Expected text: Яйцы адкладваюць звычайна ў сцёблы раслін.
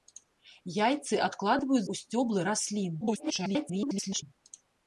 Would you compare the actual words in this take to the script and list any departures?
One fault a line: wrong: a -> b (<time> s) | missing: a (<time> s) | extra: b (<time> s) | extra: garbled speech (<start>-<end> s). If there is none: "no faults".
missing: звычайна (1.8 s)
extra: garbled speech (3.0-4.2 s)